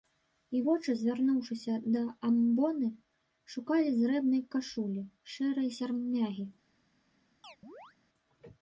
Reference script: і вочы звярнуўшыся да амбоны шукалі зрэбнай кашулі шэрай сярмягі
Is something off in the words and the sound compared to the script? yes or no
yes